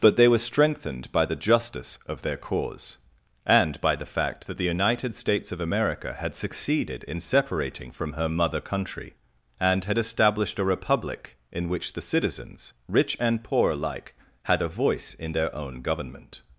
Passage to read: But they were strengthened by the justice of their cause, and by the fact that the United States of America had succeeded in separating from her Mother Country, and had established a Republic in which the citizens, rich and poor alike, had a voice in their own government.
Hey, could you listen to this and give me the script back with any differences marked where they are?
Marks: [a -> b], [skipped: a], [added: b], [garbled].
But they were strengthened by the justice of their cause, and by the fact that the United States of America had succeeded in separating from her Mother Country, and had established a Republic in which the citizens, rich and poor alike, had a voice in their own government.